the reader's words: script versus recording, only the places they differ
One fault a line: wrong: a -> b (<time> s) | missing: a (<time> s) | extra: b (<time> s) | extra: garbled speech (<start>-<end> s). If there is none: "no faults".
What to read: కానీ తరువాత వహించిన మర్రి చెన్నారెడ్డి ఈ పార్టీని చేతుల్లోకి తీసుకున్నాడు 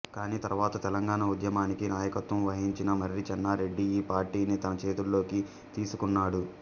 extra: తెలంగాణ ఉద్యమానికి నాయకత్వం (0.8 s)
extra: తన (4.6 s)